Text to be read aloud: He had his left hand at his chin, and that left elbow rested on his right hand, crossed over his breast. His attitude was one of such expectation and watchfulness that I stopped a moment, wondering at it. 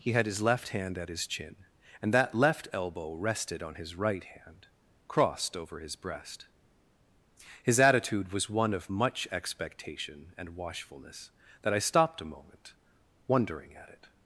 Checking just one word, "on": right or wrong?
right